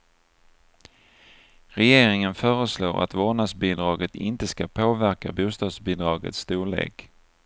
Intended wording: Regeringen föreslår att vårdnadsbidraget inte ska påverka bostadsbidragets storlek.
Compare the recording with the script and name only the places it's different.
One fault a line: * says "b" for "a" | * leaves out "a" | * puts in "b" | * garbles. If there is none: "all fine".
all fine